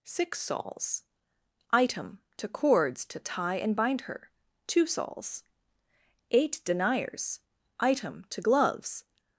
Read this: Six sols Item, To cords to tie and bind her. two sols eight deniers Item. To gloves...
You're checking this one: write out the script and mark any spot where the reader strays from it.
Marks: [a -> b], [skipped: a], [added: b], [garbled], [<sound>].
Six sols Item, To cords to tie and bind her. two sols eight deniers Item. To gloves...